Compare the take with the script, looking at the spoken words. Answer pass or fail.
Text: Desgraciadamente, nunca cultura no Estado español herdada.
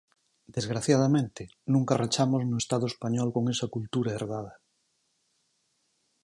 fail